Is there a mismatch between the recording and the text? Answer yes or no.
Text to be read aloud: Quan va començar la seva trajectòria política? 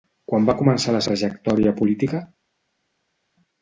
yes